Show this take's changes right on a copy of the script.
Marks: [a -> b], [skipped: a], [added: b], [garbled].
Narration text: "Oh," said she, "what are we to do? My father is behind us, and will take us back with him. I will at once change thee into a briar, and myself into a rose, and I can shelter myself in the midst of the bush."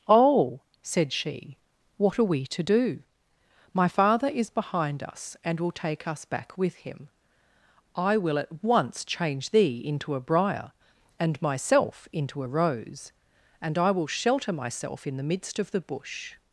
"Oh," said she, "what are we to do? My father is behind us, and will take us back with him. I will at once change thee into a briar, and myself into a rose, and I [can -> will] shelter myself in the midst of the bush."